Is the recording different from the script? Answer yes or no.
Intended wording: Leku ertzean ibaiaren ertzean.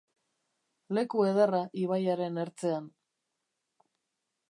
yes